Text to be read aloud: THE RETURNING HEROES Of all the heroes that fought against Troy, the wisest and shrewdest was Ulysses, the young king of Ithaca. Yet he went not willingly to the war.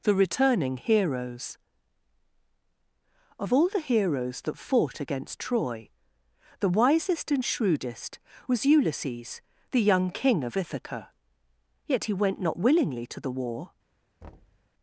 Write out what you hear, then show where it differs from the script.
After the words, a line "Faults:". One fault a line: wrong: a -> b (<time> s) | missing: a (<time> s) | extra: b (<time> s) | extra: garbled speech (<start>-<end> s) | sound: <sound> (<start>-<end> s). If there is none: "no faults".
THE RETURNING HEROES Of all the heroes that fought against Troy, the wisest and shrewdest was Ulysses, the young king of Ithaca. Yet he went not willingly to the war.
Faults:
sound: thud (14.2-14.7 s)